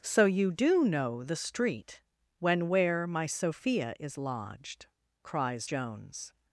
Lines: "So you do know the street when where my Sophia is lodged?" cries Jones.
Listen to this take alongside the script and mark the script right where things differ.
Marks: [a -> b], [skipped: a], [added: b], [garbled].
"So you do know the street when where my Sophia is lodged?" cries Jones.